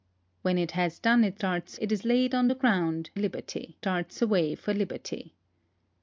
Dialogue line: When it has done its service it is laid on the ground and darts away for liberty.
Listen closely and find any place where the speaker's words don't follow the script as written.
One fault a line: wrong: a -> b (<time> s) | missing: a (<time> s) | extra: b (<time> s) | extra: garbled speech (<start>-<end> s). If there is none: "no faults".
wrong: service -> darts (1.4 s)
wrong: and -> liberty (3.2 s)